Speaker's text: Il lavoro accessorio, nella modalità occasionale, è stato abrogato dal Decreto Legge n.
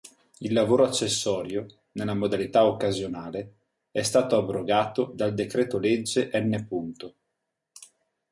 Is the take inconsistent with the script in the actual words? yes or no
no